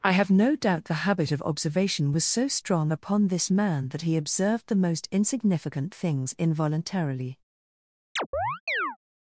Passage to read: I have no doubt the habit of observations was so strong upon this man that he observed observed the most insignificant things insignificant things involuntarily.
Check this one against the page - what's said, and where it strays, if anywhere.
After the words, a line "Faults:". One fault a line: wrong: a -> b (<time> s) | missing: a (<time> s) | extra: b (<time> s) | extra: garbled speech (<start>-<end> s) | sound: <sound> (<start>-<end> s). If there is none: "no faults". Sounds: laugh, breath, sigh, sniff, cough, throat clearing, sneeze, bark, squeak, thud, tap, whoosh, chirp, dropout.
I have no doubt the habit of observation was so strong upon this man that he observed the most insignificant things involuntarily.
Faults:
wrong: observations -> observation (1.4 s)
missing: observed (4.7 s)
missing: insignificant things (6.4 s)
sound: chirp (8.2-9.0 s)